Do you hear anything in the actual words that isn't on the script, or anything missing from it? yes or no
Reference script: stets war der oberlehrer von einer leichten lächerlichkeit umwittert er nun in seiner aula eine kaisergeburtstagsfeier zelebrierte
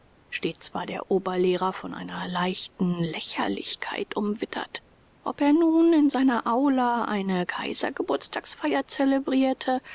yes